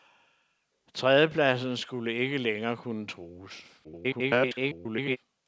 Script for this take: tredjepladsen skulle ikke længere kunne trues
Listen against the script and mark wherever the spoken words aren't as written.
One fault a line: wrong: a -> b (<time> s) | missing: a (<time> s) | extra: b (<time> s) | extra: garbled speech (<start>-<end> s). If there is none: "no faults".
extra: garbled speech (3.8-5.2 s)